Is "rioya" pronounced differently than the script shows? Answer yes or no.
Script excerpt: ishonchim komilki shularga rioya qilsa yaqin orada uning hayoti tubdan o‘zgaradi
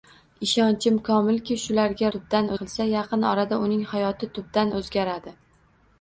yes